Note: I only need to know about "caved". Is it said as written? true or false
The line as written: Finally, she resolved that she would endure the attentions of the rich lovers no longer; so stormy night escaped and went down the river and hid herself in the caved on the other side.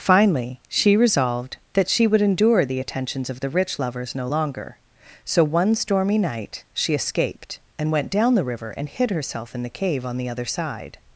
false